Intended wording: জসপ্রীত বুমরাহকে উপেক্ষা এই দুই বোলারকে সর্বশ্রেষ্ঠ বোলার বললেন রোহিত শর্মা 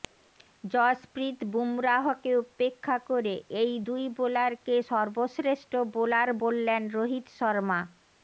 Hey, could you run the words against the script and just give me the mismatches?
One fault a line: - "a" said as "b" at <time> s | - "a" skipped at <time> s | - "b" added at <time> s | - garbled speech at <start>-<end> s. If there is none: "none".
- "করে" added at 3.1 s